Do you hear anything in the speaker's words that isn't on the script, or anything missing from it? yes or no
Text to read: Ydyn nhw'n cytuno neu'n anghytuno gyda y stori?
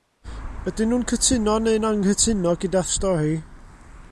no